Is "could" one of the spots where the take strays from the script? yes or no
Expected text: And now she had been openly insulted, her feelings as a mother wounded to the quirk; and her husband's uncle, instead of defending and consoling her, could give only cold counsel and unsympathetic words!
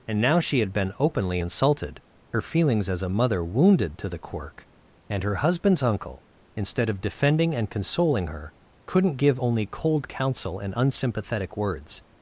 yes